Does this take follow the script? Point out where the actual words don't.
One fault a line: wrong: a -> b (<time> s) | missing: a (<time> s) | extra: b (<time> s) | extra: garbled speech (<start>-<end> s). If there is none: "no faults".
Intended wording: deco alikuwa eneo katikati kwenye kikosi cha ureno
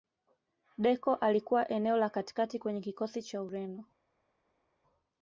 extra: la (2.0 s)